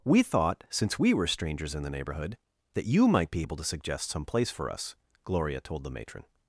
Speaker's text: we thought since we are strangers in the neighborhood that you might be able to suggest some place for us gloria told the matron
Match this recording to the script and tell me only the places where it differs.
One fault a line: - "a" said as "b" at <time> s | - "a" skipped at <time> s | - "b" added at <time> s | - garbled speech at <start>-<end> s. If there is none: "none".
- "are" said as "were" at 1.1 s